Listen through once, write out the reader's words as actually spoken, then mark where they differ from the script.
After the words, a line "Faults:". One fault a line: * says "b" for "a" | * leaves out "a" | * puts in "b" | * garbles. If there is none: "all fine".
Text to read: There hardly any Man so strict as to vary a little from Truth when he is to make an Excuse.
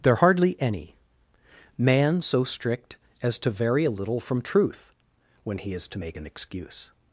There hardly any Man so strict as to vary a little from Truth when he is to make an Excuse.
Faults:
all fine